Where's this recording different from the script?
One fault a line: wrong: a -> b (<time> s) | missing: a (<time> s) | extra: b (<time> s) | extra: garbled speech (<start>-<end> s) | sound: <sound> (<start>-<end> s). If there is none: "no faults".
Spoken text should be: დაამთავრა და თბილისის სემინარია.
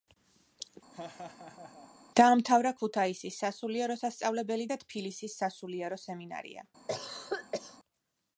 sound: laugh (0.9-1.9 s)
extra: ქუთაისის სასულიერო სასწავლებელი (2.8 s)
extra: სასულიერო (5.4 s)
sound: cough (6.9-7.8 s)